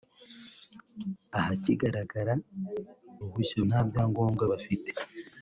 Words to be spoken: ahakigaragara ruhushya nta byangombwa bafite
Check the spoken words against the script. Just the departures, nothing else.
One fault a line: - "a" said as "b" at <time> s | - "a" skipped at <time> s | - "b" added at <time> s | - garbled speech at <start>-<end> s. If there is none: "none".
none